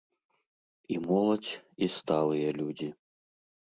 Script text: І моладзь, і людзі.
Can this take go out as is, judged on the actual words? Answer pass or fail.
fail